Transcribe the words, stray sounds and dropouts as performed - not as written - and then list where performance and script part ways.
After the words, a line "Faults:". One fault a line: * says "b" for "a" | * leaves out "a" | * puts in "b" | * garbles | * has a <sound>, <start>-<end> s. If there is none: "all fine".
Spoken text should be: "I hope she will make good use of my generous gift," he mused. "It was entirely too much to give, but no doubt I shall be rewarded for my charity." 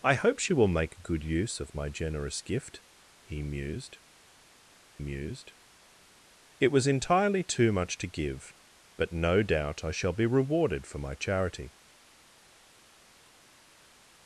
"I hope she will make good use of my generous gift," he mused mused. "It was entirely too much to give, but no doubt I shall be rewarded for my charity."
Faults:
* puts in "mused"